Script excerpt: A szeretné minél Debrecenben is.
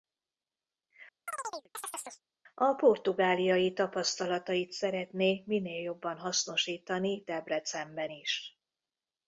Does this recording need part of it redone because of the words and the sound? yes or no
yes